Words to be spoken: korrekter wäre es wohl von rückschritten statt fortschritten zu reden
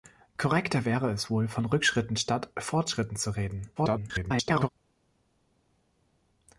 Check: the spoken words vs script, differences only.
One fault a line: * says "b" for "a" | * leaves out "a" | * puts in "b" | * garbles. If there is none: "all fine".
* garbles